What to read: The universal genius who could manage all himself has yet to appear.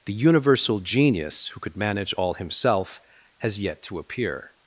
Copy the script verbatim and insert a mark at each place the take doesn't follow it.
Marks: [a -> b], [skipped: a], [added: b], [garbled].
The universal genius who could manage all himself has yet to appear.